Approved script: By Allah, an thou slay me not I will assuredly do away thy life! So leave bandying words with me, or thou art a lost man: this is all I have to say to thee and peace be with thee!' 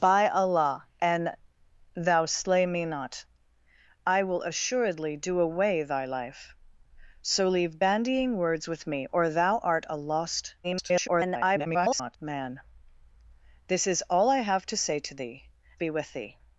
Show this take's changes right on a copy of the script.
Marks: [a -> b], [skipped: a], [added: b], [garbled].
By Allah, an thou slay me not I will assuredly do away thy life! So leave bandying words with me, or thou art a lost [garbled] man: this is all I have to say to thee [skipped: and peace] be with thee!'